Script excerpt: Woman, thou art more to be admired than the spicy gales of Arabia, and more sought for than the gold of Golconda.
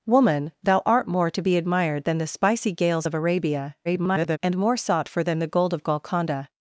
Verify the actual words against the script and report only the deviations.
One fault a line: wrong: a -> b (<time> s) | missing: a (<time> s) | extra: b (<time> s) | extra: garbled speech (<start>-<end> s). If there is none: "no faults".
extra: garbled speech (3.8-4.4 s)